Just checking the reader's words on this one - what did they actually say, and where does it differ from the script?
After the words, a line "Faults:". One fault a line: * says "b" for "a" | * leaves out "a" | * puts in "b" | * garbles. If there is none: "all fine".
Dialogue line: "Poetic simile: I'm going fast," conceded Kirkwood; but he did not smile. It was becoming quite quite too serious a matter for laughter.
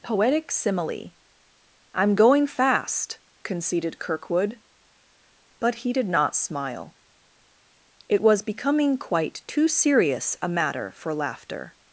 "Poetic simile: I'm going fast," conceded Kirkwood; but he did not smile. It was becoming quite too serious a matter for laughter.
Faults:
* leaves out "quite"